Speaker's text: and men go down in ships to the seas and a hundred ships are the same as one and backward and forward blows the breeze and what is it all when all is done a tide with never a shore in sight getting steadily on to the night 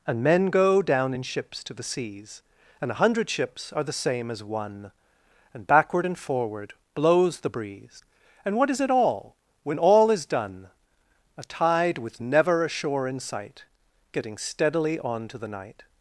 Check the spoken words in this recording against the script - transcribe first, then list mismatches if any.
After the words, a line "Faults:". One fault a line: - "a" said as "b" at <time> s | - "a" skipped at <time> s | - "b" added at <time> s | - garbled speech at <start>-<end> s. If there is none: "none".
and men go down in ships to the seas and a hundred ships are the same as one and backward and forward blows the breeze and what is it all when all is done a tide with never a shore in sight getting steadily on to the night
Faults:
none